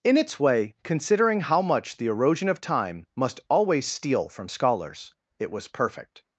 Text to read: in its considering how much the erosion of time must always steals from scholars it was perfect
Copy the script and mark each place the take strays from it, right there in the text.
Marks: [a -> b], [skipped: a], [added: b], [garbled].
in its [added: way] considering how much the erosion of time must always [steals -> steal] from scholars it was perfect